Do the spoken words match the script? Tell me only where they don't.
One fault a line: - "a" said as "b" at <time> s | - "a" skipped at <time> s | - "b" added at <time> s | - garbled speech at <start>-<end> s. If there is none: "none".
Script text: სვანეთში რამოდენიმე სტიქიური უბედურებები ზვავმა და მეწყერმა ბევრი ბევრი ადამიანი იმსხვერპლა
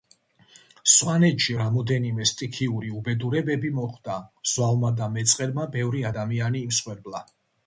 - "მოხდა" added at 3.8 s
- "ბევრი" skipped at 6.1 s